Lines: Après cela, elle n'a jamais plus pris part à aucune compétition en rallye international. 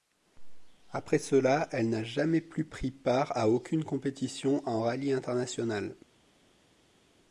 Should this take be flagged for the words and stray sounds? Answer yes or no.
no